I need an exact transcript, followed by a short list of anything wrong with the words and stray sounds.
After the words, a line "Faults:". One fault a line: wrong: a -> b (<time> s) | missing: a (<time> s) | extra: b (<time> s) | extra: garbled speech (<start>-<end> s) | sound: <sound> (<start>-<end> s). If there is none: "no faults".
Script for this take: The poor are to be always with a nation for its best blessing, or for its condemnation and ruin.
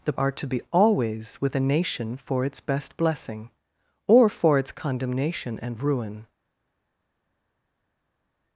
The are to be always with a nation for its best blessing, or for its condemnation and ruin.
Faults:
missing: poor (0.1 s)